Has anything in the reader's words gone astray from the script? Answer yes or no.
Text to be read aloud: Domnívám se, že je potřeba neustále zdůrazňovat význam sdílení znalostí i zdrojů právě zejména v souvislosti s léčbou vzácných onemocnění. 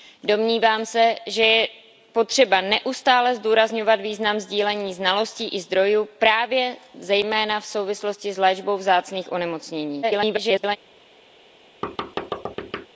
yes